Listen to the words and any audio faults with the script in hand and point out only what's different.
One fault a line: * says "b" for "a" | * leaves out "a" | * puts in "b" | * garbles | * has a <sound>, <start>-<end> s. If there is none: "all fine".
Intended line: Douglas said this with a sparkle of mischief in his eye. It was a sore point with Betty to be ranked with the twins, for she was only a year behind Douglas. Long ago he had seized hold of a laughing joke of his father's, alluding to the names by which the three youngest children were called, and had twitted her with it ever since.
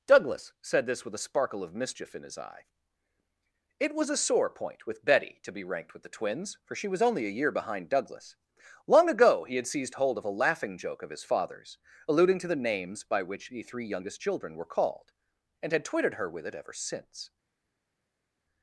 all fine